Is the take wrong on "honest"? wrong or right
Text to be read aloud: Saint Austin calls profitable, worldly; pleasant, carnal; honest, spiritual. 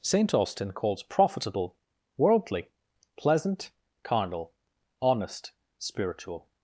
right